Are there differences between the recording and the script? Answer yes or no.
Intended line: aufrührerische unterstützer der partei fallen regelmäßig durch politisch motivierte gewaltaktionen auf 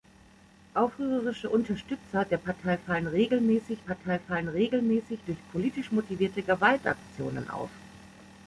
yes